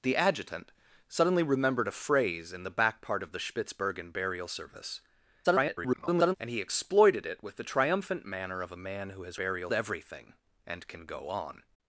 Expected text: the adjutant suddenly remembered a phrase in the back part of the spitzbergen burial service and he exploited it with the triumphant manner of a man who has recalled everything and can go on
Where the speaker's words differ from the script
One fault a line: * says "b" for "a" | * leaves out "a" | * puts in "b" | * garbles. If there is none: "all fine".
* garbles
* says "burial" for "recalled"